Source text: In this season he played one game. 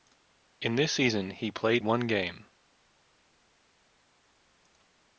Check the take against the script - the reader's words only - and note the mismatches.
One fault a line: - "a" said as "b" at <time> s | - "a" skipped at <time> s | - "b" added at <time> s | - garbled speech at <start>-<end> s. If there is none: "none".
none